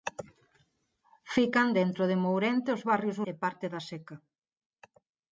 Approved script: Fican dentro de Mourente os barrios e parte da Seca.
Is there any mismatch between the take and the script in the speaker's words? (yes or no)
no